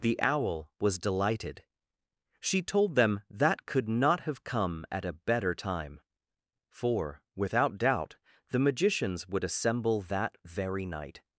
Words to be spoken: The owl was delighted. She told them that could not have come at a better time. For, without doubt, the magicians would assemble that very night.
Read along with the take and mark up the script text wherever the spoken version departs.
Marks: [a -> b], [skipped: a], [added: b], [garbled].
The owl was delighted. She told them that could not have come at a better time. For, without doubt, the magicians would assemble that very night.